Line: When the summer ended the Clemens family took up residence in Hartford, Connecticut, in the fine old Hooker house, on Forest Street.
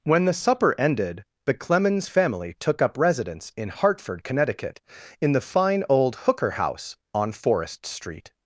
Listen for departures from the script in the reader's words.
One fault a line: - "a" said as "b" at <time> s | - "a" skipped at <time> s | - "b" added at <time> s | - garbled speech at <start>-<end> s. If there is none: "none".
- "summer" said as "supper" at 0.3 s